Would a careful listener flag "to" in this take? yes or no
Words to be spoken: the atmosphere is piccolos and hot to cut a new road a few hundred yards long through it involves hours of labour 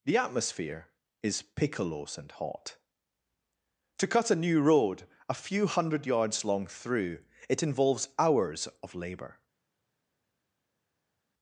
no